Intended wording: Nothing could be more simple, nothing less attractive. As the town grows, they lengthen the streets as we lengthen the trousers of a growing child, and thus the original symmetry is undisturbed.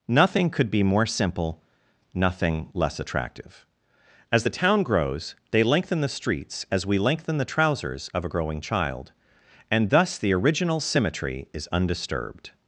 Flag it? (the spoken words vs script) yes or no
no